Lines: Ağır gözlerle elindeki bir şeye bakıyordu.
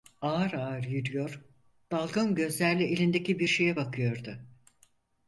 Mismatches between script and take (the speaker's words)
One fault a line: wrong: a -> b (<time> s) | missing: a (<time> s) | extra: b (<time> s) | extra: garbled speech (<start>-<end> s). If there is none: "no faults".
extra: ağır yürüyor dalgın (0.5 s)